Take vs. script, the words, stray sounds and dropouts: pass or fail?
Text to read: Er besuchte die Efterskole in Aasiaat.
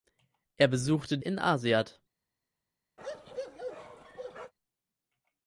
fail